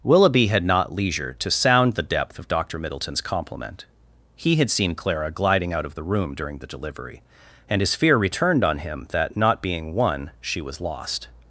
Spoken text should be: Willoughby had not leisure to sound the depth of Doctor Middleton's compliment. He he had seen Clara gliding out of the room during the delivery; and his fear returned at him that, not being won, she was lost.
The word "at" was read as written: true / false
false